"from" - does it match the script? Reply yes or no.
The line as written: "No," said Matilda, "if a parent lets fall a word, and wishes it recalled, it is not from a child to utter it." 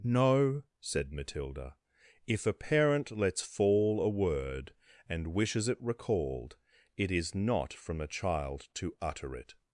yes